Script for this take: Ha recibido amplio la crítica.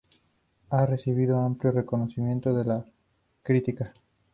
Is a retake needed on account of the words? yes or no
yes